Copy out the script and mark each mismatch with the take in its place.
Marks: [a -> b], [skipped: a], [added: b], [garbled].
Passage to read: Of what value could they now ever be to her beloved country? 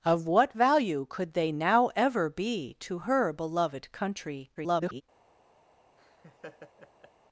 Of what value could they now ever be to her beloved country? [garbled]